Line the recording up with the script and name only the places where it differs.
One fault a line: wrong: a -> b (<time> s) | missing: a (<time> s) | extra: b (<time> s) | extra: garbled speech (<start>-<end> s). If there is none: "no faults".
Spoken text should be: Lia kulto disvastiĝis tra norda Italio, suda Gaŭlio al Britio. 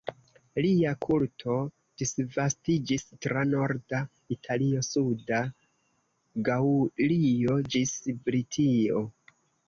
wrong: al -> ĝis (7.7 s)